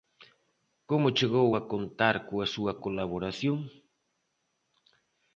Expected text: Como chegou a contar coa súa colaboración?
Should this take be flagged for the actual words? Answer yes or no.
no